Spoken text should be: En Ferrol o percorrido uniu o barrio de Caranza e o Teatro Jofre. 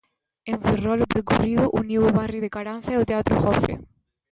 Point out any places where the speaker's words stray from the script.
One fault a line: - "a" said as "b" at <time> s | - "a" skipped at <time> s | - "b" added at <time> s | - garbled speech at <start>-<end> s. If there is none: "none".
none